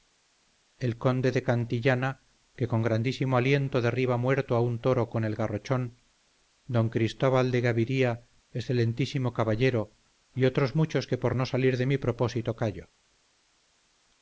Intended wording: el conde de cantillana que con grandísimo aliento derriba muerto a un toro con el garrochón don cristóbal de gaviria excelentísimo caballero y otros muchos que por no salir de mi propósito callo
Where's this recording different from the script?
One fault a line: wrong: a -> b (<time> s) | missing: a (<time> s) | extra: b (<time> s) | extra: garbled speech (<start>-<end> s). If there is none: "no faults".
no faults